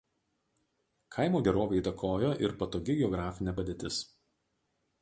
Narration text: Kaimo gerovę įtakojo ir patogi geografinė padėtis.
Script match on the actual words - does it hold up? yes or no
yes